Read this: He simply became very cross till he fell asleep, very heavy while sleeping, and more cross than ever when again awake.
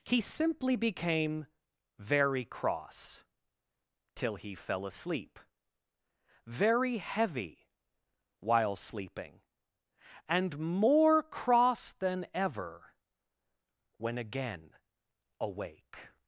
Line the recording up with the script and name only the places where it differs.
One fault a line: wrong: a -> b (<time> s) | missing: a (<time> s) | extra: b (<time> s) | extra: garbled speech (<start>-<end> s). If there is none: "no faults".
no faults